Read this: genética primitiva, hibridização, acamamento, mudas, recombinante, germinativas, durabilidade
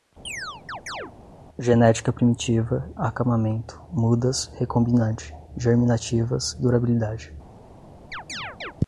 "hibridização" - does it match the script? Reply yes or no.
no